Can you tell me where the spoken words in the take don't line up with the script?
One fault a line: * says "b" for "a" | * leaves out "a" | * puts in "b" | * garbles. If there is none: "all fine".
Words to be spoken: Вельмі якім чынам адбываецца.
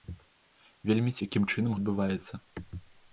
all fine